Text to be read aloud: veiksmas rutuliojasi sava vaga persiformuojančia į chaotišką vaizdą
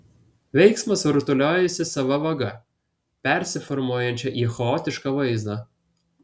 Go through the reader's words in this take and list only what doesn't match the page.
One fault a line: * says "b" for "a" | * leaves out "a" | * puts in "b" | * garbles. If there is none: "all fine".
all fine